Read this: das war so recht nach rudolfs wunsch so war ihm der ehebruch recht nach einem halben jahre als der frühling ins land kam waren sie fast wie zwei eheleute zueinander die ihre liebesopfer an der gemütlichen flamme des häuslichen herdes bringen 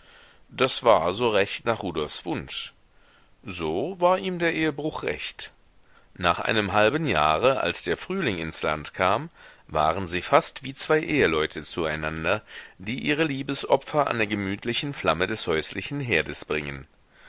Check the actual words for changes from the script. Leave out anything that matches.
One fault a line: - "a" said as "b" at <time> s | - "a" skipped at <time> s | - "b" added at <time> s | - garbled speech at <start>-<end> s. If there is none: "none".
none